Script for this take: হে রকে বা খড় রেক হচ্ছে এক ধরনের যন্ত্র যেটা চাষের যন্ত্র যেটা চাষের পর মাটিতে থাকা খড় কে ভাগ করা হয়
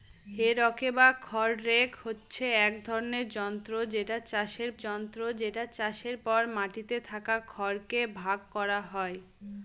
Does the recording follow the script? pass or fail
pass